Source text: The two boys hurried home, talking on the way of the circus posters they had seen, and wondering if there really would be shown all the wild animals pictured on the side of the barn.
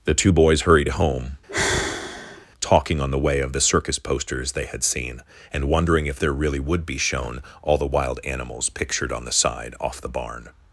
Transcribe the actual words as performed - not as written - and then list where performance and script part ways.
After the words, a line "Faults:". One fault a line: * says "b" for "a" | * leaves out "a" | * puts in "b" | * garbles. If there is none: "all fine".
The two boys hurried home, talking on the way of the circus posters they had seen, and wondering if there really would be shown all the wild animals pictured on the side off the barn.
Faults:
* says "off" for "of"